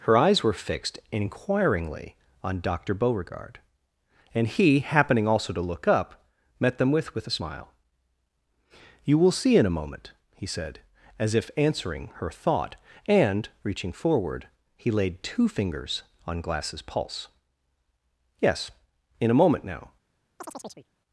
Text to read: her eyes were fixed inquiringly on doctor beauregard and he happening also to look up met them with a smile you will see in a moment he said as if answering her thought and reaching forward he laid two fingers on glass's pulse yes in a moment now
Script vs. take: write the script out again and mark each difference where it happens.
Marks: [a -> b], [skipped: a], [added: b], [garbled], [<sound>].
her eyes were fixed inquiringly on doctor beauregard and he happening also to look up met them with [added: with] a smile you will see in a moment he said as if answering her thought and reaching forward he laid two fingers on glass's pulse yes in a moment now [chirp]